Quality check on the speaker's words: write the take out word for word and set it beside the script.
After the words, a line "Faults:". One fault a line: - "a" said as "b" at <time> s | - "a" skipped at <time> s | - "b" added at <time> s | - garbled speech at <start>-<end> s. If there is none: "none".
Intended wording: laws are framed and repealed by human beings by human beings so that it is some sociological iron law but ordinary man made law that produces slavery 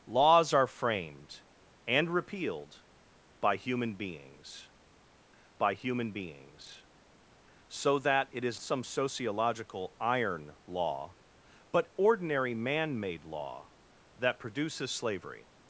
laws are framed and repealed by human beings by human beings so that it is some sociological iron law but ordinary man made law that produces slavery
Faults:
none